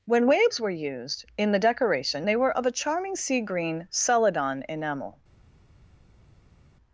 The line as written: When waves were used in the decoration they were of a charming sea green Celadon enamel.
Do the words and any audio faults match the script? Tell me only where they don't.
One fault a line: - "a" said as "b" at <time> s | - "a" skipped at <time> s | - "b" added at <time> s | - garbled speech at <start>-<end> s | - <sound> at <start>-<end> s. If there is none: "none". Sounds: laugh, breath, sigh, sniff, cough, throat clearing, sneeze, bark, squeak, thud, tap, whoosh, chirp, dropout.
none